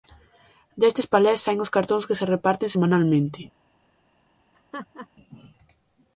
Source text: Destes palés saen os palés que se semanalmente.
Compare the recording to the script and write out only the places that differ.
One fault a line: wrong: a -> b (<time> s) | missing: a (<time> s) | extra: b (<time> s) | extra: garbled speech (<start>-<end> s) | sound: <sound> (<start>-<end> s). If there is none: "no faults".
wrong: palés -> cartóns (1.8 s)
extra: reparten (2.3 s)
sound: laugh (4.5-5.1 s)